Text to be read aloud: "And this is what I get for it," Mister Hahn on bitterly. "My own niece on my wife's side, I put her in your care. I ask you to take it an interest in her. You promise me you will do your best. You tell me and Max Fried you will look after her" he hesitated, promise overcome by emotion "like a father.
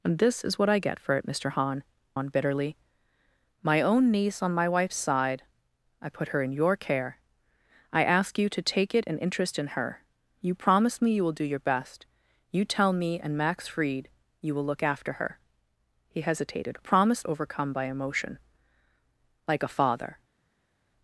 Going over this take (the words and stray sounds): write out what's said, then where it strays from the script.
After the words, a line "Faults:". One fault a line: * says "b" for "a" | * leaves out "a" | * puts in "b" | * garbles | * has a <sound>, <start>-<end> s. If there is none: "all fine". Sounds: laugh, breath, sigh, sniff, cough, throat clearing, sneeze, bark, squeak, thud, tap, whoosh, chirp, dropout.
"And this is what I get for it," Mister Hahn on bitterly. "My own niece on my wife's side, I put her in your care. I ask you to take it an interest in her. You promise me you will do your best. You tell me and Max Fried you will look after her" he hesitated, promise overcome by emotion "like a father.
Faults:
all fine